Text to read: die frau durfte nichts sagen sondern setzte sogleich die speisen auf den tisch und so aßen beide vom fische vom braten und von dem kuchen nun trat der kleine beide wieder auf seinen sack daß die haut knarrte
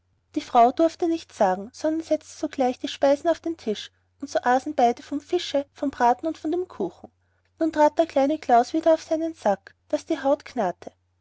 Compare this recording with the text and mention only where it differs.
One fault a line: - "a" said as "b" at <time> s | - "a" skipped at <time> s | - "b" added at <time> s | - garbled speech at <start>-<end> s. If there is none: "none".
- "beide" said as "klaus" at 8.4 s